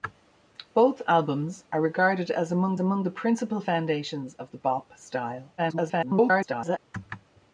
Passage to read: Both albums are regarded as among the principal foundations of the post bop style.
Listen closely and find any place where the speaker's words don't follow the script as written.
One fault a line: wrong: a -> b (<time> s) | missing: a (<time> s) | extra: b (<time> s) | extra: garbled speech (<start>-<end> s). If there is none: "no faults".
extra: among (2.8 s)
missing: post (4.6 s)
extra: garbled speech (5.6-6.8 s)